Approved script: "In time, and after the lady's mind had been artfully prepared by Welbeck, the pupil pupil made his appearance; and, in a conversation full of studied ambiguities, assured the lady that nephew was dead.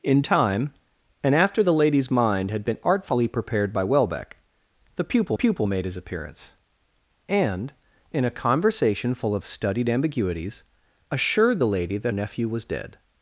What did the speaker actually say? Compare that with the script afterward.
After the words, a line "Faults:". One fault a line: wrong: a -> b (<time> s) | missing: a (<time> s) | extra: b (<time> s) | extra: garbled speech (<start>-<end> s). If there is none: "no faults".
"In time, and after the lady's mind had been artfully prepared by Welbeck, the pupil pupil made his appearance; and, in a conversation full of studied ambiguities, assured the lady that nephew was dead.
Faults:
no faults